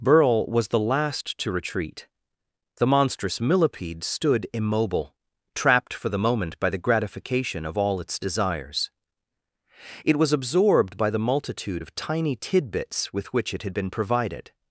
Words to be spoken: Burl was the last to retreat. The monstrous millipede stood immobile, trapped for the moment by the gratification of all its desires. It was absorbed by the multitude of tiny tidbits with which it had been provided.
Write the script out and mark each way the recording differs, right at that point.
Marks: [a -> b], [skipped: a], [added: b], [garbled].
Burl was the last to retreat. The monstrous millipede stood immobile, trapped for the moment by the gratification of all its desires. It was absorbed by the multitude of tiny tidbits with which it had been provided.